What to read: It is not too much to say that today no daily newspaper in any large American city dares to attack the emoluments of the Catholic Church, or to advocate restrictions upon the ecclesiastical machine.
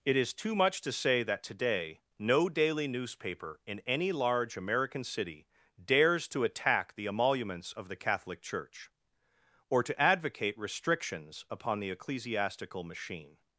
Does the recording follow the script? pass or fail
fail